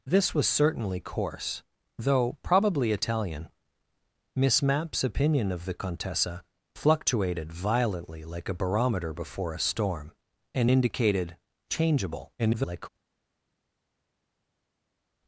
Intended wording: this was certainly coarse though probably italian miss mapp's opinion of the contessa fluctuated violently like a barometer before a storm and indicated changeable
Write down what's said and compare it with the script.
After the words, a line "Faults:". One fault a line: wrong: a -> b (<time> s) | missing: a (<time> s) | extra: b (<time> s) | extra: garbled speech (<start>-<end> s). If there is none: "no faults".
this was certainly coarse though probably italian miss mapp's opinion of the contessa fluctuated violently like a barometer before a storm and indicated changeable [garbled]
Faults:
extra: garbled speech (12.4-12.9 s)